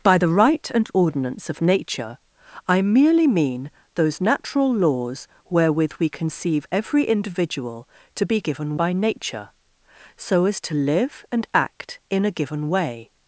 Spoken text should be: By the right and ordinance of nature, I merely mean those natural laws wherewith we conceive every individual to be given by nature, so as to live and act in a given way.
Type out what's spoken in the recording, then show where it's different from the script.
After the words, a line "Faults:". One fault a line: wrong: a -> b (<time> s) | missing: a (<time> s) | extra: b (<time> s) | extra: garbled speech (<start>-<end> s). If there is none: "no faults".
By the right and ordinance of nature, I merely mean those natural laws wherewith we conceive every individual to be given by nature, so as to live and act in a given way.
Faults:
no faults